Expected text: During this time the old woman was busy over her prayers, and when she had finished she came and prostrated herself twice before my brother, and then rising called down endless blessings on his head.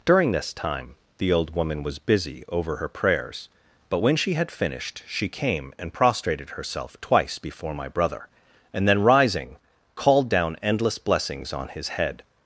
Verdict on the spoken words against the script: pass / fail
fail